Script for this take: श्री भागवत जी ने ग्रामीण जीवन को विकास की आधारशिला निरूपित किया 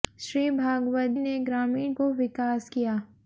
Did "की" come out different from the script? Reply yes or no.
yes